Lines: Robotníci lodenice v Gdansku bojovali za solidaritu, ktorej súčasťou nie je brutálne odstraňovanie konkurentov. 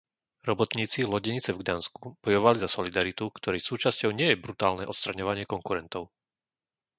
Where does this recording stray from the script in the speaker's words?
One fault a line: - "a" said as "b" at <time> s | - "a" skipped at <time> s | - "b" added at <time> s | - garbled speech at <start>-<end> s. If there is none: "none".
none